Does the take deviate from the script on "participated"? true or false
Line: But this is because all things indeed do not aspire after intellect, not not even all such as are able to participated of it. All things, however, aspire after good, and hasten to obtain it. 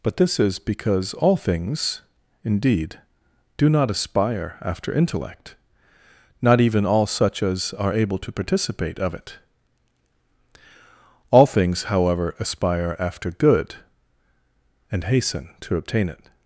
true